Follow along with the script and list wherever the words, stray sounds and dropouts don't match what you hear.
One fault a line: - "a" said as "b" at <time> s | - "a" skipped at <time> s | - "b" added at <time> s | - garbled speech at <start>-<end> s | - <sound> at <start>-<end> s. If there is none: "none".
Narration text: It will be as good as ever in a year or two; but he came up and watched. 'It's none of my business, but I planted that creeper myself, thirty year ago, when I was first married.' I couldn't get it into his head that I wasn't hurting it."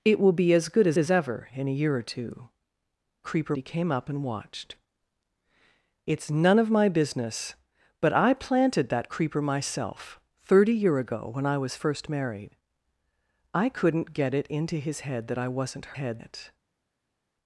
- "as" added at 1.0 s
- "but" said as "creeper" at 3.2 s
- "hurting" said as "head" at 15.9 s